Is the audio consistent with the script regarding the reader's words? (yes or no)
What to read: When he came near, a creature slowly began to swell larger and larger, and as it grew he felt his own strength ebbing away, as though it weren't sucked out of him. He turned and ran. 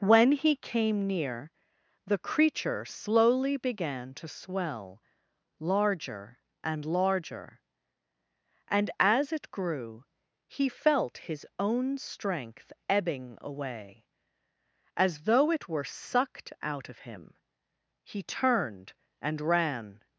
no